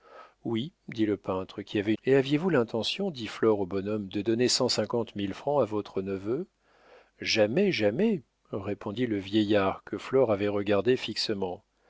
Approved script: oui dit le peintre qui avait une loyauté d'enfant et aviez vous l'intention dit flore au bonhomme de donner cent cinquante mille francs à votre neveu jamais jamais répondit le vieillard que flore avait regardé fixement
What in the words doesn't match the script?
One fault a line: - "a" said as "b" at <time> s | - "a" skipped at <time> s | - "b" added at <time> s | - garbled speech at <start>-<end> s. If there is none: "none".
- "une loyauté d'enfant" skipped at 1.9 s